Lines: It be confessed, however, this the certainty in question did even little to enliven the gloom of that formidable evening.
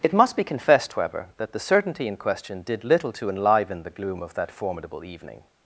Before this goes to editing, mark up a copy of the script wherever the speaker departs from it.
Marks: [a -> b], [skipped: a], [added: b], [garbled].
It [added: must] be confessed, however, [this -> that] the certainty in question did [skipped: even] little to enliven the gloom of that formidable evening.